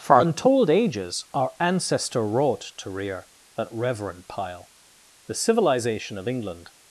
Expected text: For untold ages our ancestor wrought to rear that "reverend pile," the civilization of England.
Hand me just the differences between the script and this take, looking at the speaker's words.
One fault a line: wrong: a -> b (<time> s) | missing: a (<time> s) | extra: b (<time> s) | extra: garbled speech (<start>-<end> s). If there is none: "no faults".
no faults